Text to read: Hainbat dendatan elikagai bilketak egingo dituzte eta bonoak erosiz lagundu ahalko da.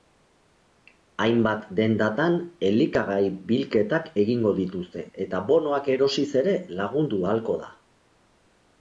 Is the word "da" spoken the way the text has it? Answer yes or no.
yes